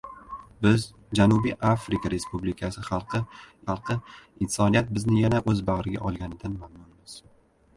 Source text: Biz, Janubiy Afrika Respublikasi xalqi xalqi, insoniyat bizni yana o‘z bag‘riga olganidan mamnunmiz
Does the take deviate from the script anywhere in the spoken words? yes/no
no